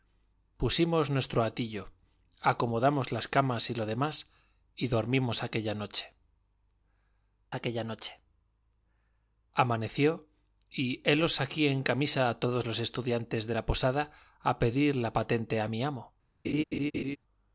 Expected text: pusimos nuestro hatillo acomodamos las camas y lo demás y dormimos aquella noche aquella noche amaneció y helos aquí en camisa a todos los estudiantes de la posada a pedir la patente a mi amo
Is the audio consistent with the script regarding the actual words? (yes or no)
yes